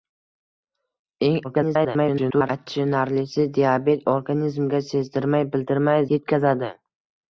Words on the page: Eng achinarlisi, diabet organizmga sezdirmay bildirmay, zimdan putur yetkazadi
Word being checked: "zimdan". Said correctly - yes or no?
no